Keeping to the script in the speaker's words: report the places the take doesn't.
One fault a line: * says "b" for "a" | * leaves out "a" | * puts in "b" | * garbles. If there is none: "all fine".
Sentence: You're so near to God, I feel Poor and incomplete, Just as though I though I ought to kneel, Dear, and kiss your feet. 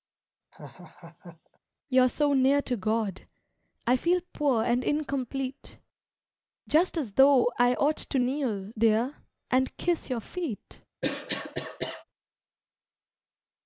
* leaves out "though I"